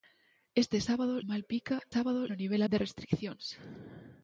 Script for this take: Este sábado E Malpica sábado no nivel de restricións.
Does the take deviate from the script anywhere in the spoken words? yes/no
no